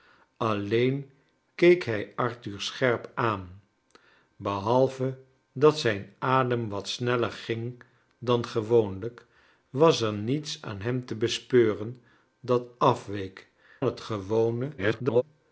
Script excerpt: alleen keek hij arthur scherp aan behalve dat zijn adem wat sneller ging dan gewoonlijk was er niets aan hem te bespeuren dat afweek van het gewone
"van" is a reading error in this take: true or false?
true